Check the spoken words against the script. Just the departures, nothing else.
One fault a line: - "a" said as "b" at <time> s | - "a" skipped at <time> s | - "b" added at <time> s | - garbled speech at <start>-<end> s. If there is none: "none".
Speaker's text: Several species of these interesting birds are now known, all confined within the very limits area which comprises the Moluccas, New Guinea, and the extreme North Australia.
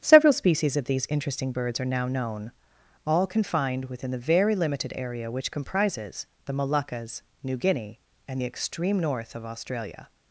- "limits" said as "limited" at 4.5 s
- "of" added at 9.3 s